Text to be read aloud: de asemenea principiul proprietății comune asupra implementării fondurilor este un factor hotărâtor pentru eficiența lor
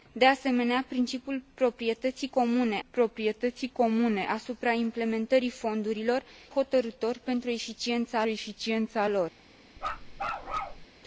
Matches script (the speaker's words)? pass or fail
fail